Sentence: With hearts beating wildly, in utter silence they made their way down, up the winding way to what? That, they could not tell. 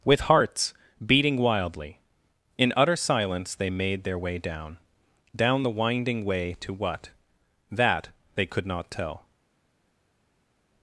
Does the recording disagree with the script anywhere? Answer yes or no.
yes